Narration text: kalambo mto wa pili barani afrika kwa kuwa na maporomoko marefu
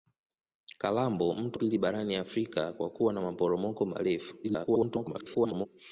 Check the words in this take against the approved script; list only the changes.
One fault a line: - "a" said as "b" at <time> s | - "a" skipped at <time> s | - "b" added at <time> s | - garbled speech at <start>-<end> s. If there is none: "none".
- "wa" skipped at 1.6 s
- garbled speech at 4.4-5.7 s